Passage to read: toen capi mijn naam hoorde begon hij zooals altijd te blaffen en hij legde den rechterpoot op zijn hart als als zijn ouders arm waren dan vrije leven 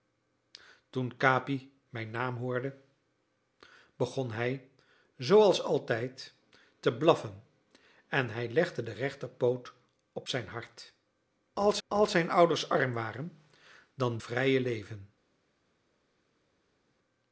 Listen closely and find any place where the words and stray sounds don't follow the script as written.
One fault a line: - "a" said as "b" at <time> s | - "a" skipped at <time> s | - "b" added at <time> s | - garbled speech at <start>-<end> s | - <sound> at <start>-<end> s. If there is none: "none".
none